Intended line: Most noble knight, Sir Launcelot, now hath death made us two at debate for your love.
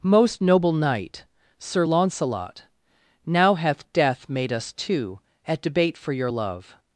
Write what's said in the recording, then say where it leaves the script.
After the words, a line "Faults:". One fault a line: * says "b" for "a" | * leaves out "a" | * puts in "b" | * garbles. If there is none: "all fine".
Most noble knight, Sir Launcelot, now hath death made us two at debate for your love.
Faults:
all fine